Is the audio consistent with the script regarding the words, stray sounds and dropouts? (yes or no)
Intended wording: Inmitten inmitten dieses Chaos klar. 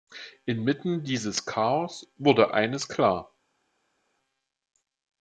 no